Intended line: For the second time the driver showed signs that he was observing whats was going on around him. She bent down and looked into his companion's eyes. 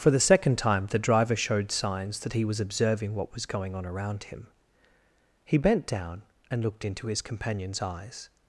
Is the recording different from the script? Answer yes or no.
yes